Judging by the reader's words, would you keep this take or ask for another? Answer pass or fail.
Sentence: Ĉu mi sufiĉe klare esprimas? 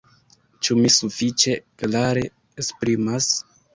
pass